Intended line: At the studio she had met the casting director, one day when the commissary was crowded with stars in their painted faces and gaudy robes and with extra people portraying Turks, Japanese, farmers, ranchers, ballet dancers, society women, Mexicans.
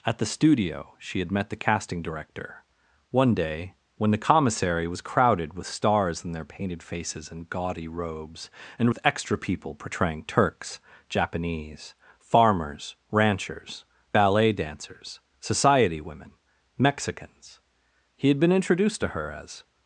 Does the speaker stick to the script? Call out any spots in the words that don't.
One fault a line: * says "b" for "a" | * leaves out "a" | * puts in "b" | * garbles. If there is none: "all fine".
* puts in "He had been introduced to her as"